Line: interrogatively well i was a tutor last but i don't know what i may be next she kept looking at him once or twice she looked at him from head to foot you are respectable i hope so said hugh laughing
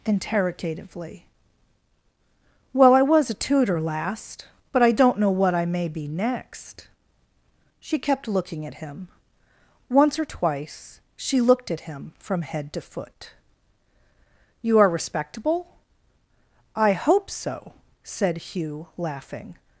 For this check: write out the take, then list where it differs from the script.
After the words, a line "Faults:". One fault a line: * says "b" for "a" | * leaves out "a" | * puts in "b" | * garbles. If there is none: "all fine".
interrogatively well i was a tutor last but i don't know what i may be next she kept looking at him once or twice she looked at him from head to foot you are respectable i hope so said hugh laughing
Faults:
all fine